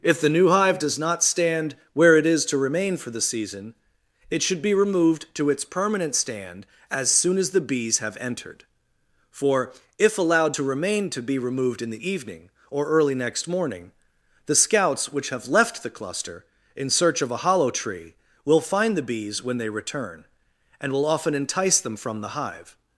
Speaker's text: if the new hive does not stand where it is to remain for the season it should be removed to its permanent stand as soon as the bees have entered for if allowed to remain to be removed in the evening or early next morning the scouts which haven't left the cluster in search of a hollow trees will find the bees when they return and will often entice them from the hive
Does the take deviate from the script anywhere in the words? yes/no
yes